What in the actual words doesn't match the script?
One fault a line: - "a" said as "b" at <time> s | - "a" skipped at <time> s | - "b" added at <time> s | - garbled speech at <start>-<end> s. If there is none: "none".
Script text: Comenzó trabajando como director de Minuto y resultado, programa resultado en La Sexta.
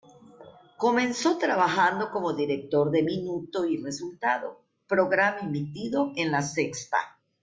- "resultado" said as "emitido" at 5.4 s